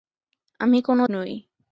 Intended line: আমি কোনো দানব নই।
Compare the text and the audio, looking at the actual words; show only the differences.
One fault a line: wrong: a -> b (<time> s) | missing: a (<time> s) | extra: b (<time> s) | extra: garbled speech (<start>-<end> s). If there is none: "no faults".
missing: দানব (1.0 s)